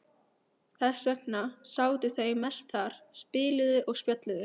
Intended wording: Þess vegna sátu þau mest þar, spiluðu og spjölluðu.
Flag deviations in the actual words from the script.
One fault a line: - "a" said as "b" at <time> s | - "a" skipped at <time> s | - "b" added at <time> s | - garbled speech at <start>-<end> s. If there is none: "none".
none